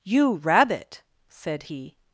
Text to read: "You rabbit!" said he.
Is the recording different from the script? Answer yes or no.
no